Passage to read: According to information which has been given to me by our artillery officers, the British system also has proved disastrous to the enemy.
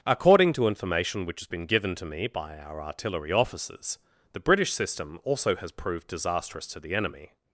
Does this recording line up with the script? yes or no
yes